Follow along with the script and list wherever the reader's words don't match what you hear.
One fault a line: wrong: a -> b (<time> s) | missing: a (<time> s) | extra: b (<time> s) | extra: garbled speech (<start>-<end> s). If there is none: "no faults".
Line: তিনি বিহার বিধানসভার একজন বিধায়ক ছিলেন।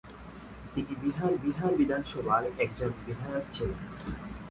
extra: বিহার (1.4 s)